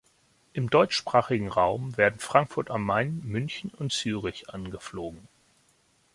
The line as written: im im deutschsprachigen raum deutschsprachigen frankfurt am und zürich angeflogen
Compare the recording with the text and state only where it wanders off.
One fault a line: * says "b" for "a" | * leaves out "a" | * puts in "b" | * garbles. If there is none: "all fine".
* leaves out "im"
* says "werden" for "deutschsprachigen"
* puts in "main münchen"